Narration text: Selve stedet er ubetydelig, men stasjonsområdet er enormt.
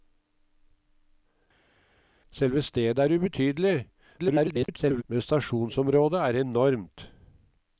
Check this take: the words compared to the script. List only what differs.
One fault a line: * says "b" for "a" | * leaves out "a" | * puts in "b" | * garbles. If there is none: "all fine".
* garbles